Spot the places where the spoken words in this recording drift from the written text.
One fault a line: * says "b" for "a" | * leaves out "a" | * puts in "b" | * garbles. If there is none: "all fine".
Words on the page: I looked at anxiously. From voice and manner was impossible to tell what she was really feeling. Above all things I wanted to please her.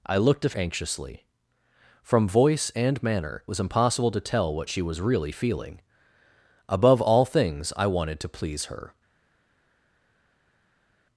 all fine